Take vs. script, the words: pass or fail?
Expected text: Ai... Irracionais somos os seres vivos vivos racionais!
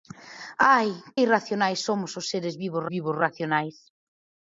pass